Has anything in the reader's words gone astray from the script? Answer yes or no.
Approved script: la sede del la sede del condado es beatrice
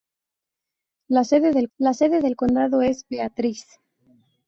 no